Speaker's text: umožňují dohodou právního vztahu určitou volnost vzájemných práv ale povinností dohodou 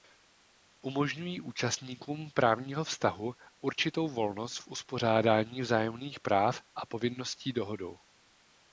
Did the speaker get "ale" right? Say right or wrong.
wrong